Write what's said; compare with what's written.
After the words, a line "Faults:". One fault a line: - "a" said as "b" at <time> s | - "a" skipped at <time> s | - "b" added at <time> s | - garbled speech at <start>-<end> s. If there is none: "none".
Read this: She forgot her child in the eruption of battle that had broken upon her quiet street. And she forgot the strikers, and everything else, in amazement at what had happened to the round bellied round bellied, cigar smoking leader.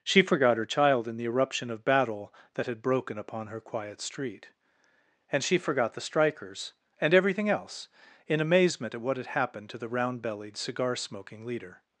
She forgot her child in the eruption of battle that had broken upon her quiet street. And she forgot the strikers, and everything else, in amazement at what had happened to the round bellied, cigar smoking leader.
Faults:
- "round bellied" skipped at 10.6 s